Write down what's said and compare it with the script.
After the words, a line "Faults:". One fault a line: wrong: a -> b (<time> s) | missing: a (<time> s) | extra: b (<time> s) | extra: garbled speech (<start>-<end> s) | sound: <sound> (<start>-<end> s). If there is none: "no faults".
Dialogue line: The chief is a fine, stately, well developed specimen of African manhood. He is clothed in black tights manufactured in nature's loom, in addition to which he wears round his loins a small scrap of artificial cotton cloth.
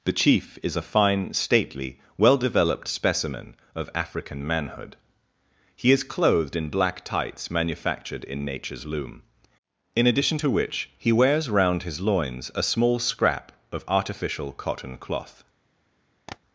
The chief is a fine, stately, well developed specimen of African manhood. He is clothed in black tights manufactured in nature's loom, in addition to which he wears round his loins a small scrap of artificial cotton cloth.
Faults:
sound: tap (16.3-16.4 s)